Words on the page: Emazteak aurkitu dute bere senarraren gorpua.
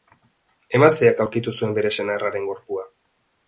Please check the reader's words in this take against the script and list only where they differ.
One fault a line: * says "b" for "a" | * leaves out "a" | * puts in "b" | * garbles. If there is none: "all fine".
* says "zuen" for "dute"